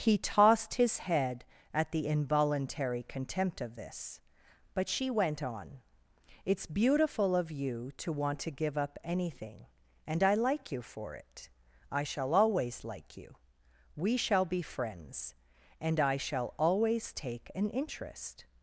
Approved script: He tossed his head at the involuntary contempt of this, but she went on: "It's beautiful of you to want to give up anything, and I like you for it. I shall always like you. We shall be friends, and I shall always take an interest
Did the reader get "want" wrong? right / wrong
right